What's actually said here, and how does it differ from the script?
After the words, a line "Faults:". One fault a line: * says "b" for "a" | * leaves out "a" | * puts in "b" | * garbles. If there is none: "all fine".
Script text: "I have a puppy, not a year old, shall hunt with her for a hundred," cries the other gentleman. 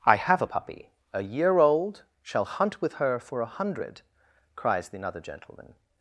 "I have a puppy, a year old, shall hunt with her for a hundred," cries the another gentleman.
Faults:
* leaves out "not"
* says "another" for "other"